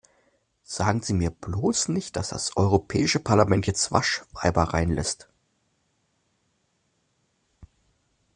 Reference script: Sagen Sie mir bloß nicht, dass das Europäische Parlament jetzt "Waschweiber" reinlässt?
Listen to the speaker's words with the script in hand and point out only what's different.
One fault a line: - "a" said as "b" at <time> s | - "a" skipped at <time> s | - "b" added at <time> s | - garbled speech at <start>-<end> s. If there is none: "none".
none